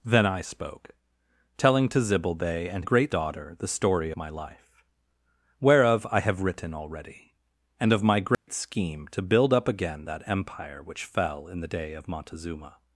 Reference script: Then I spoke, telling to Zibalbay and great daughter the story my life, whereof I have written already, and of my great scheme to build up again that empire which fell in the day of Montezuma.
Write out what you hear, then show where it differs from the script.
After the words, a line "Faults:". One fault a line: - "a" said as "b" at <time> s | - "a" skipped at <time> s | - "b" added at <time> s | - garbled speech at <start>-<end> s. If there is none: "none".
Then I spoke, telling to Zibalbay and great daughter the story my life, whereof I have written already, and of my great scheme to build up again that empire which fell in the day of Montezuma.
Faults:
none